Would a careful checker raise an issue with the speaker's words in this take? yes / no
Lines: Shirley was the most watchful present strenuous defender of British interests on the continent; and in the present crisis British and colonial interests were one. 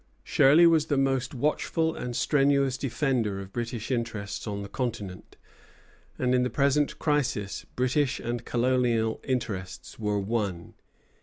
yes